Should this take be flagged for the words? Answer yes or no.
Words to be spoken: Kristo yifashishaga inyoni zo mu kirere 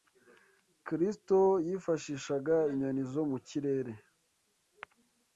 no